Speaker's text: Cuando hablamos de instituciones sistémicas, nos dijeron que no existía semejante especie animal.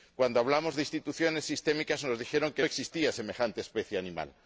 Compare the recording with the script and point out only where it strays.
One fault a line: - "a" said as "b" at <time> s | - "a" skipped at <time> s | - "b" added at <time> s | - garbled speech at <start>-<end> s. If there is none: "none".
- "no" skipped at 2.6 s